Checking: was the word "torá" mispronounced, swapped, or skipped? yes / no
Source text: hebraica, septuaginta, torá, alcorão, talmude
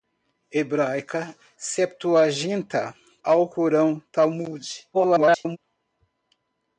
yes